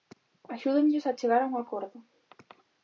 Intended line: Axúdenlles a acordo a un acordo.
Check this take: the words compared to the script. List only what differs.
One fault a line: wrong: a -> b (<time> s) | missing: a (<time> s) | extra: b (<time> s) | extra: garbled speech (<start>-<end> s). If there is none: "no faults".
wrong: acordo -> chegar (1.2 s)